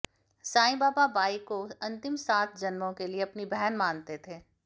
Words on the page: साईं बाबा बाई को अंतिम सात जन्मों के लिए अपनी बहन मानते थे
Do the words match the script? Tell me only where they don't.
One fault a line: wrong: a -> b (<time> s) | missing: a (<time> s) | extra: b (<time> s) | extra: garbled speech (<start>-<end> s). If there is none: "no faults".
no faults